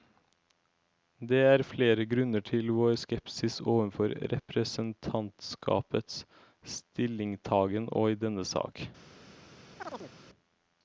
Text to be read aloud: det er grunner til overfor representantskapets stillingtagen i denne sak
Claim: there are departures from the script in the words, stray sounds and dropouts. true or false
true